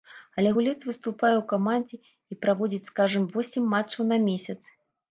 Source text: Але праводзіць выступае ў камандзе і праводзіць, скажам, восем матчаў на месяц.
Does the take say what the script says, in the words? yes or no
no